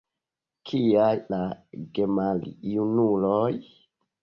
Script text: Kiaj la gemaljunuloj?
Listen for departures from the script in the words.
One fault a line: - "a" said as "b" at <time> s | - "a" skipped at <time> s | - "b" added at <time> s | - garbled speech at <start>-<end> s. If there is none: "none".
none